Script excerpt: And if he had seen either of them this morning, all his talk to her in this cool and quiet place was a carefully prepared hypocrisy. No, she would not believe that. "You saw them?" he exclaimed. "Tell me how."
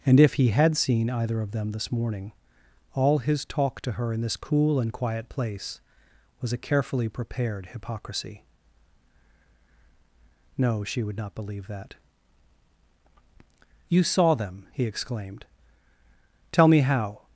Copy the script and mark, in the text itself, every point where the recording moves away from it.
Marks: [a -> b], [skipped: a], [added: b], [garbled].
And if he had seen either of them this morning, all his talk to her in this cool and quiet place was a carefully prepared hypocrisy. No, she would not believe that. "You saw them?" he exclaimed. "Tell me how."